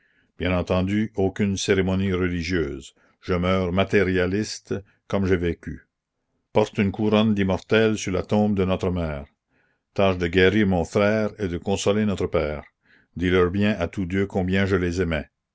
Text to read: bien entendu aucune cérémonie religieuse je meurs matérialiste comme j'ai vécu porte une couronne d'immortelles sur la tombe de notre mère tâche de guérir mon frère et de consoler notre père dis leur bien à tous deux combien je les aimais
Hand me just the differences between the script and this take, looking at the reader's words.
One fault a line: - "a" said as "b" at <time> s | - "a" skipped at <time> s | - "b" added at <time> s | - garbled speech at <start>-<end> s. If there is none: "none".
none